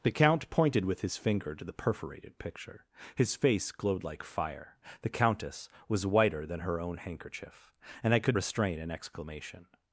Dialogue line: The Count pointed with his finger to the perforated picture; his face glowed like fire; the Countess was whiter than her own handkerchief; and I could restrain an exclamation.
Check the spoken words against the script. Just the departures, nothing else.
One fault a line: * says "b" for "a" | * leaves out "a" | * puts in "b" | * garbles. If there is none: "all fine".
all fine